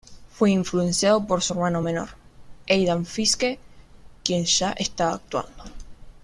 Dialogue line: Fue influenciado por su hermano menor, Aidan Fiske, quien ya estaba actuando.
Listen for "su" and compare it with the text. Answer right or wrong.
right